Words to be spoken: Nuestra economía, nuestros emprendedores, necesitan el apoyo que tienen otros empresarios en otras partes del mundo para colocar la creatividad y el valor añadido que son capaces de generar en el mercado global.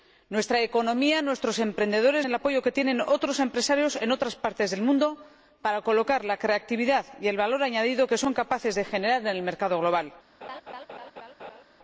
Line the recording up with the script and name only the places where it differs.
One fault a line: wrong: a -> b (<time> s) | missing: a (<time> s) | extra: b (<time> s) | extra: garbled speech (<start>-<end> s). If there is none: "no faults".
missing: necesitan (2.2 s)